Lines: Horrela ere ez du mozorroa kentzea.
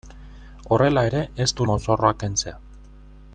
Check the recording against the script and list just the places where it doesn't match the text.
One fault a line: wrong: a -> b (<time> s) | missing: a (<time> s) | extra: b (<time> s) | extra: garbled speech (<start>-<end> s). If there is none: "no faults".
no faults